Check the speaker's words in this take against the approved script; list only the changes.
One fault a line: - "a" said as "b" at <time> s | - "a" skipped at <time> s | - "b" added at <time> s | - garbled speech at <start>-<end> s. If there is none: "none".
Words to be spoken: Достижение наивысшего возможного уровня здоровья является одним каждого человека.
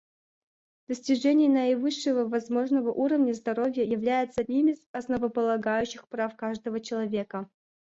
- "из основополагающих прав" added at 4.7 s